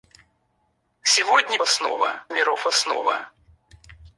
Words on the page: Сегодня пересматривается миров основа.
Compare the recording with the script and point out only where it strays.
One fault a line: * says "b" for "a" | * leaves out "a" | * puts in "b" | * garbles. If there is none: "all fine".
* says "основа" for "пересматривается"